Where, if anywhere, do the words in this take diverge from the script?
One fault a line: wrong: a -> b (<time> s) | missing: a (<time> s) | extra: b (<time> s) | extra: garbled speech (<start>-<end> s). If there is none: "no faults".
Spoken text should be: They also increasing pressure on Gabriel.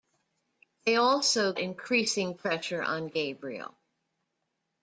no faults